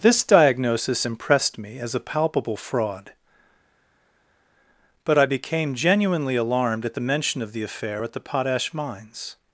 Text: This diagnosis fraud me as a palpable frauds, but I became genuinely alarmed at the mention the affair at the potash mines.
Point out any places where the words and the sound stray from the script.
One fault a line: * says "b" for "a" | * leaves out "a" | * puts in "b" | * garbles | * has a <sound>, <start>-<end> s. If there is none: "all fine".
* says "impressed" for "fraud"
* says "fraud" for "frauds"
* puts in "of"